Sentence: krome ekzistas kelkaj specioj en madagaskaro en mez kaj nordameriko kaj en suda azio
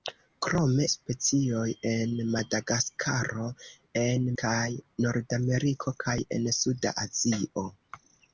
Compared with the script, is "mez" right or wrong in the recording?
wrong